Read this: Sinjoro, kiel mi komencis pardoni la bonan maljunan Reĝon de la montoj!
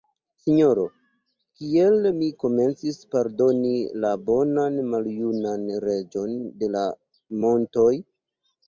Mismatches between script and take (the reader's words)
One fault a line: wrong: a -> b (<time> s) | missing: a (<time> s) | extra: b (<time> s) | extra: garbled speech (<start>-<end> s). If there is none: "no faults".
no faults